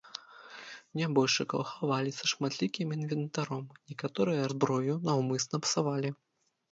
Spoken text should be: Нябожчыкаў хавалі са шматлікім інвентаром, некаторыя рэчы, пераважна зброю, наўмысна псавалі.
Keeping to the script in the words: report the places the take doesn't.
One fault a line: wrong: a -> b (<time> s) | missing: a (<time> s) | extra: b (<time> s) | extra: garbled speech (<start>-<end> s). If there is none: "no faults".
missing: рэчы пераважна (4.5 s)